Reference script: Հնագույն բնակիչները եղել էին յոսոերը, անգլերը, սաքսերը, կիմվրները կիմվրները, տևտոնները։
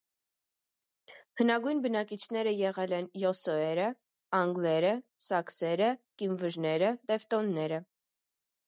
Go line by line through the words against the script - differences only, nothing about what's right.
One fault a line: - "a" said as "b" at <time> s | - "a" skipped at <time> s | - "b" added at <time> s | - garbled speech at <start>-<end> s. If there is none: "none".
- "էին" said as "են" at 3.0 s
- "կիմվրները" skipped at 7.0 s